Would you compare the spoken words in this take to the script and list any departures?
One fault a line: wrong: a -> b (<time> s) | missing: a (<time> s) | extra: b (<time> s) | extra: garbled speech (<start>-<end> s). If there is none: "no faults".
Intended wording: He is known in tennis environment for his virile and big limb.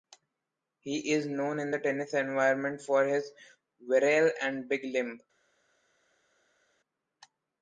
extra: the (1.7 s)